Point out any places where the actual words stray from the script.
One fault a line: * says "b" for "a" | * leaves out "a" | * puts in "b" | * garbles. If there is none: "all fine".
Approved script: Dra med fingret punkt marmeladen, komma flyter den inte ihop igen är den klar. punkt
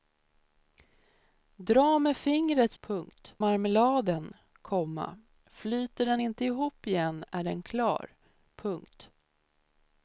all fine